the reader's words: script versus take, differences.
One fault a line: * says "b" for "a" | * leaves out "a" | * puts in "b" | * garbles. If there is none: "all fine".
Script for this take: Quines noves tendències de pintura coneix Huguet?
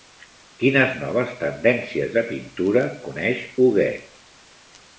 all fine